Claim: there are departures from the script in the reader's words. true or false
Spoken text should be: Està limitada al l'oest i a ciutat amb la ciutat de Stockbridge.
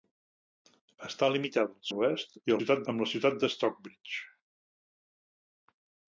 false